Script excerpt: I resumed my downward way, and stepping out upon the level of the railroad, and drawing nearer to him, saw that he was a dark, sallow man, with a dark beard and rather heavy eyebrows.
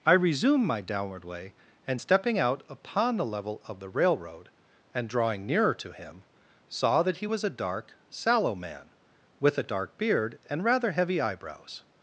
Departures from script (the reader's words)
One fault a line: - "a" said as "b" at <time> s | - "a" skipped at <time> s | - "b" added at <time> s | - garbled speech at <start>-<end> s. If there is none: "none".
none